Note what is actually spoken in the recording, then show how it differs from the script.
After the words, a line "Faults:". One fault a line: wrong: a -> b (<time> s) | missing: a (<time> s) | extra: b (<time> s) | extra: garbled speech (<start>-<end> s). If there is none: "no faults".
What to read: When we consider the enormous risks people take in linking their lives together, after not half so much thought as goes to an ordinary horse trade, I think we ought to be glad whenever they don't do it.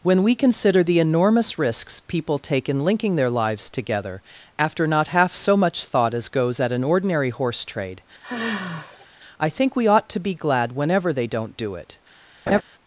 When we consider the enormous risks people take in linking their lives together, after not half so much thought as goes at an ordinary horse trade, I think we ought to be glad whenever they don't do it.
Faults:
wrong: to -> at (6.6 s)